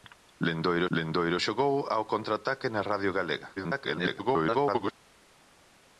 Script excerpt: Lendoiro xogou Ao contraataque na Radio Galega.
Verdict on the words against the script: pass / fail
fail